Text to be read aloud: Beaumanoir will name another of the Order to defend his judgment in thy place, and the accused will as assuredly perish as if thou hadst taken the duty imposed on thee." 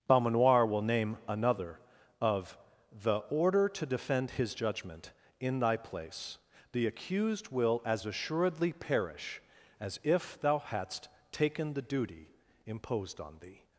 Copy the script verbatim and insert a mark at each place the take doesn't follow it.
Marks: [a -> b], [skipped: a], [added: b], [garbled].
Beaumanoir will name another of the Order to defend his judgment in thy place, [skipped: and] the accused will as assuredly perish as if thou hadst taken the duty imposed on thee."